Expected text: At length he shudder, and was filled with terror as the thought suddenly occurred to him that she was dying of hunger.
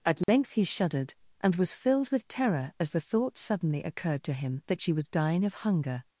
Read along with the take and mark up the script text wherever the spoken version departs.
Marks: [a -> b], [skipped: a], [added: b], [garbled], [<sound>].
At length [dropout] he [shudder, -> shuddered] and was filled with terror as the thought suddenly occurred to him that she was dying of hunger.